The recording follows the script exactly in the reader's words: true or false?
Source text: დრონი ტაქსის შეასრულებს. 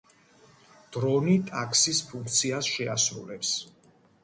false